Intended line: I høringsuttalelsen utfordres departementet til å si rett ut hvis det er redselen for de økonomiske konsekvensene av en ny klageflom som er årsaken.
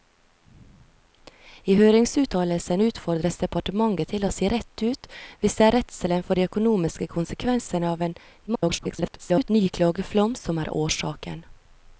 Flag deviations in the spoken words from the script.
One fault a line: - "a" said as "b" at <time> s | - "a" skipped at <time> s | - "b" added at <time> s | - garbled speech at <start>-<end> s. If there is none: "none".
- garbled speech at 8.5-9.5 s